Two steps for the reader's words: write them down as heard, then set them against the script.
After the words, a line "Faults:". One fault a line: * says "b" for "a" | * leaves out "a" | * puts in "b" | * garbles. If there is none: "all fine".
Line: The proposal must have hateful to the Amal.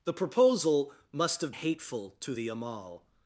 The proposal must have hateful to the Amal.
Faults:
all fine